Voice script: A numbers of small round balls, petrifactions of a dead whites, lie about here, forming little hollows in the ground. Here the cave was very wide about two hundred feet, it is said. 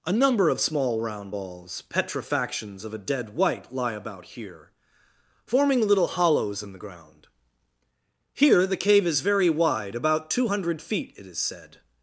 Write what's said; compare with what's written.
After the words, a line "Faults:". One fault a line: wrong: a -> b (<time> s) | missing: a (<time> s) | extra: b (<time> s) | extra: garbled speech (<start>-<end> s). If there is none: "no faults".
A number of small round balls, petrifactions of a dead white, lie about here, forming little hollows in the ground. Here the cave is very wide about two hundred feet, it is said.
Faults:
wrong: numbers -> number (0.1 s)
wrong: whites -> white (3.3 s)
wrong: was -> is (9.1 s)